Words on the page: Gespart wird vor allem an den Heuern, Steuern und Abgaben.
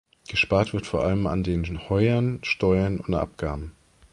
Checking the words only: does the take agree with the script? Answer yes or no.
yes